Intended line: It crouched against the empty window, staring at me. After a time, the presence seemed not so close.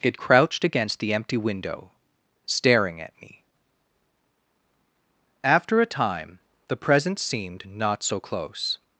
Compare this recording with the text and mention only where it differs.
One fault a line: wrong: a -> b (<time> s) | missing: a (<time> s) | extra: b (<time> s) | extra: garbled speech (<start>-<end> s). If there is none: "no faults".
no faults